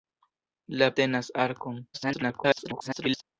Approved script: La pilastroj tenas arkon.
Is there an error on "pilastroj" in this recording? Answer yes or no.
yes